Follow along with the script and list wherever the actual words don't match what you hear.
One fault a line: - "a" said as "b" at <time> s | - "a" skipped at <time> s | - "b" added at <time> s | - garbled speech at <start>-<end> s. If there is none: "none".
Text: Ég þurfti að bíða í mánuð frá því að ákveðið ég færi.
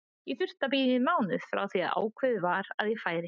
- "var að" added at 2.4 s